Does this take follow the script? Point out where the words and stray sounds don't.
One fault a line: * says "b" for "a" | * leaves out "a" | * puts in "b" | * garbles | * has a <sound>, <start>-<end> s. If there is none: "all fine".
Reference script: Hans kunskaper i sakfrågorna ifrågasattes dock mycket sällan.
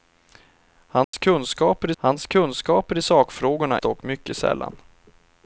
* has a dropout, 1.0-1.1 s
* puts in "hans kunskaper"
* leaves out "ifrågasattes"